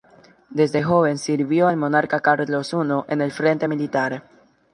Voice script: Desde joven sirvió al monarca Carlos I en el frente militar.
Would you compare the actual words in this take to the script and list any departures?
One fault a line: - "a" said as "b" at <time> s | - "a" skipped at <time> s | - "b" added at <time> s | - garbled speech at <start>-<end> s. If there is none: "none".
none